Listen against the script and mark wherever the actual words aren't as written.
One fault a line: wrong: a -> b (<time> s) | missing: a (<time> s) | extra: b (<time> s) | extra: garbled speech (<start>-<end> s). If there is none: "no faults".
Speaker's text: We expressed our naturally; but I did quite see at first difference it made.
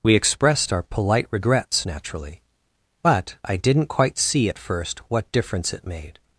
extra: polite regrets (0.8 s)
wrong: did -> didn't (3.6 s)
extra: what (5.1 s)